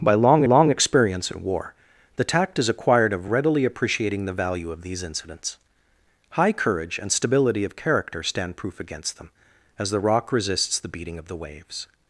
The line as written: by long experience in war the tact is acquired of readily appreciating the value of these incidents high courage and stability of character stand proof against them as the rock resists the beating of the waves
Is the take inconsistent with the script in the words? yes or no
yes